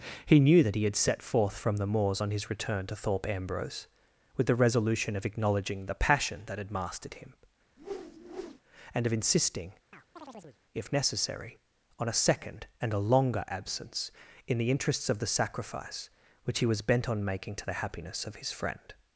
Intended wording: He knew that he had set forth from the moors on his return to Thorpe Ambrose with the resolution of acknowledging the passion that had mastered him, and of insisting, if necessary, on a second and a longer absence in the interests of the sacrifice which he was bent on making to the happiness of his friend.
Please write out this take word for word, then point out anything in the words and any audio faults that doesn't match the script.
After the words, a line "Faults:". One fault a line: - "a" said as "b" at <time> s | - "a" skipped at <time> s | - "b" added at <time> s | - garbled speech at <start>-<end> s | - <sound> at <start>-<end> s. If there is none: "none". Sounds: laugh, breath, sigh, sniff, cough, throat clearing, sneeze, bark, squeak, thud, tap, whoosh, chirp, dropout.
He knew that he had set forth from the moors on his return to Thorpe Ambrose with the resolution of acknowledging the passion that had mastered him, and of insisting, if necessary, on a second and a longer absence in the interests of the sacrifice which he was bent on making to the happiness of his friend.
Faults:
- whoosh at 7.8-8.6 s
- chirp at 9.9-10.6 s